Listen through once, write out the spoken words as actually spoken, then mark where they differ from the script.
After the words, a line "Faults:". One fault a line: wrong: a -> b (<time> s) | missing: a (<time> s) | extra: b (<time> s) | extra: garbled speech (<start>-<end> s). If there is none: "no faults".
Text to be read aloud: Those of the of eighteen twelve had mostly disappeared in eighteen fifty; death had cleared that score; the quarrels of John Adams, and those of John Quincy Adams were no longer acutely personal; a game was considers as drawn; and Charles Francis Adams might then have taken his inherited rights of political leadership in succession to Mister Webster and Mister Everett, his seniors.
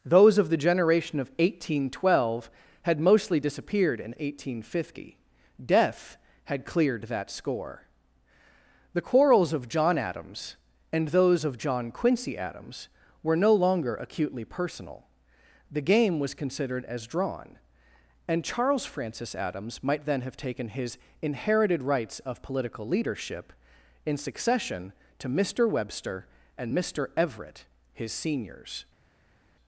Those of the generation of eighteen twelve had mostly disappeared in eighteen fifty; death had cleared that score; the quarrels of John Adams, and those of John Quincy Adams were no longer acutely personal; the game was considered as drawn; and Charles Francis Adams might then have taken his inherited rights of political leadership in succession to Mister Webster and Mister Everett, his seniors.
Faults:
extra: generation (0.6 s)
wrong: a -> the (15.7 s)
wrong: considers -> considered (16.3 s)